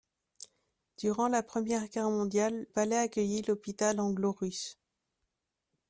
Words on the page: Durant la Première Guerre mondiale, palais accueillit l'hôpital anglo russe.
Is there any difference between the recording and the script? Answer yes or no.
no